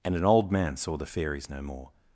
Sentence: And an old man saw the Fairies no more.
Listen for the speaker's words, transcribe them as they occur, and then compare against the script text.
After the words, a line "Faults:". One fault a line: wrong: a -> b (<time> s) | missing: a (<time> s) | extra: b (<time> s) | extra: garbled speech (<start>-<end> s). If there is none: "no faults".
And an old man saw the Fairies no more.
Faults:
no faults